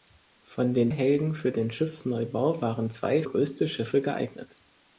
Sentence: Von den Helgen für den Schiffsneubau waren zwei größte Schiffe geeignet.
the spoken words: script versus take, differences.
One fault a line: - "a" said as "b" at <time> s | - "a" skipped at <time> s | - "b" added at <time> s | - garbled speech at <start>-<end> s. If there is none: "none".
none